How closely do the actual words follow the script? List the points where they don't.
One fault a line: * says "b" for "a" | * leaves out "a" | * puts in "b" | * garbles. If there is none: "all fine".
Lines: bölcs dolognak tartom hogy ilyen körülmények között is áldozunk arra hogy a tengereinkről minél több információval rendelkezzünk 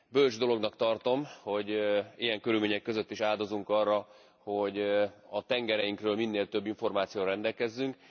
all fine